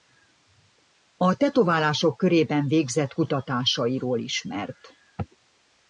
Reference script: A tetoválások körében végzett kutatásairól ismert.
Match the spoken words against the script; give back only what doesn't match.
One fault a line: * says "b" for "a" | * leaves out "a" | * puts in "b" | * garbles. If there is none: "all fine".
all fine